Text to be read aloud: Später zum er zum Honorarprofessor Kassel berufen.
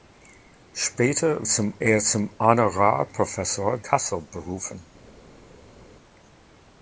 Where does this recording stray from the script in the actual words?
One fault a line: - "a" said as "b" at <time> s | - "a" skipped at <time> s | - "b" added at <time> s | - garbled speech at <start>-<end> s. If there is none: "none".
none